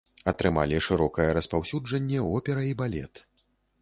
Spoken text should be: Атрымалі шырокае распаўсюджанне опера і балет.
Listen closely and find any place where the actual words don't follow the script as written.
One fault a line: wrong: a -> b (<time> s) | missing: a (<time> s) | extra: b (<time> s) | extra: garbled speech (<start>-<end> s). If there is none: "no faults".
no faults